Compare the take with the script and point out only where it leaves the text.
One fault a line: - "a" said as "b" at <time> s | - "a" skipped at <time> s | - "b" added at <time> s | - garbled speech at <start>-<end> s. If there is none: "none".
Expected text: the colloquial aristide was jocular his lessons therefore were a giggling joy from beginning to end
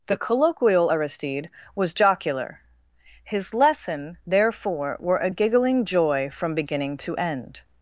- "lessons" said as "lesson" at 3.5 s